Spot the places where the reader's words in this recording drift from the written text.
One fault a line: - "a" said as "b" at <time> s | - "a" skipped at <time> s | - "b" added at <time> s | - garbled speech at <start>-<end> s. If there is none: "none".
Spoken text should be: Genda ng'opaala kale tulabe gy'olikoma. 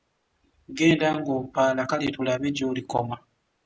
none